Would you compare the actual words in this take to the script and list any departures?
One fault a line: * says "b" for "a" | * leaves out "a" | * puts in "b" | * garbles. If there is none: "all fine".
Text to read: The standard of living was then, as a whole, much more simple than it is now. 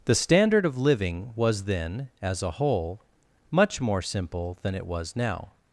* says "was" for "is"